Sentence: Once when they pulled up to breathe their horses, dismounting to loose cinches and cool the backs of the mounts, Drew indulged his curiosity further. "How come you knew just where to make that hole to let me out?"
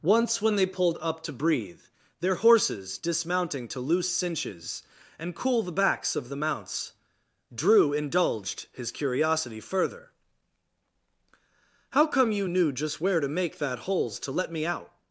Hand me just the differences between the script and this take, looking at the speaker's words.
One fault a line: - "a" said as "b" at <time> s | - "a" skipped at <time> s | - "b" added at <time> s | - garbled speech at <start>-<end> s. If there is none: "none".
- "hole" said as "holes" at 13.8 s